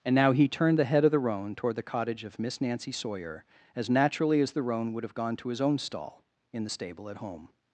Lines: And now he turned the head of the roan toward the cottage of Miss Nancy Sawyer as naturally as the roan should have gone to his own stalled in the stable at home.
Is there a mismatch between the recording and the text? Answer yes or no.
yes